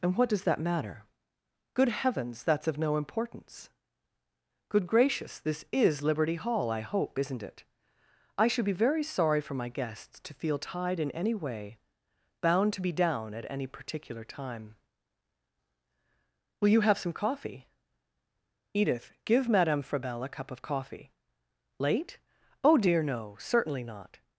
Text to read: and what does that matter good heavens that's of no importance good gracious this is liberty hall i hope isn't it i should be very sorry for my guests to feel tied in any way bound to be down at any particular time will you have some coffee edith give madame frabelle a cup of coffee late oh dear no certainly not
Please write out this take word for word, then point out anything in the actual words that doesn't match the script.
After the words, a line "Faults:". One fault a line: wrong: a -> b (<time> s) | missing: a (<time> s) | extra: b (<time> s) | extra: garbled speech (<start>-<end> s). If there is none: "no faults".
and what does that matter good heavens that's of no importance good gracious this is liberty hall i hope isn't it i should be very sorry for my guests to feel tied in any way bound to be down at any particular time will you have some coffee edith give madame frabelle a cup of coffee late oh dear no certainly not
Faults:
no faults